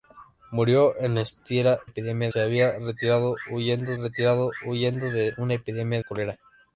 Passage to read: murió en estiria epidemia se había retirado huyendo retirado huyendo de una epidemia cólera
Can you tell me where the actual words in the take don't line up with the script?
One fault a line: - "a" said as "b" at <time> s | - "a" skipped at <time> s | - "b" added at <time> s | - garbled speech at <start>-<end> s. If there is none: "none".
none